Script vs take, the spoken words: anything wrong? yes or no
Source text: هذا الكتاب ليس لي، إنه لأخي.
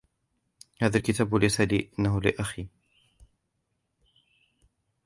no